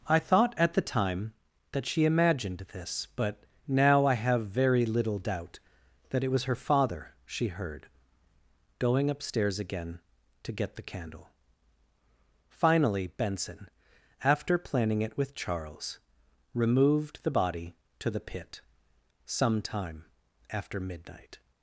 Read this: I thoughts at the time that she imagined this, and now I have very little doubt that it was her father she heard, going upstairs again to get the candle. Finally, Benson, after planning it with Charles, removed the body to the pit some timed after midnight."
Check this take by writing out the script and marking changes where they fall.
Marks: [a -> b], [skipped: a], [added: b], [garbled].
I [thoughts -> thought] at the time that she imagined this, [and -> but] now I have very little doubt that it was her father she heard, going upstairs again to get the candle. Finally, Benson, after planning it with Charles, removed the body to the pit some [timed -> time] after midnight."